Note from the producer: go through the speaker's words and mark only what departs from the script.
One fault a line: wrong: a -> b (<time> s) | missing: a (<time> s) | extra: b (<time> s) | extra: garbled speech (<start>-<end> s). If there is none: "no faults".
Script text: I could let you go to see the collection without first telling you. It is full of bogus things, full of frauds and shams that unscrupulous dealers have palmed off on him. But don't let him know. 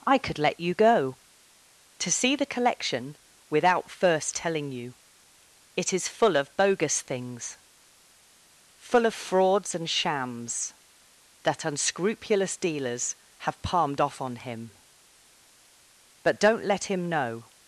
no faults